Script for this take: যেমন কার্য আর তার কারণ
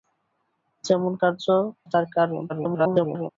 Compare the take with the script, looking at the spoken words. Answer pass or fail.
fail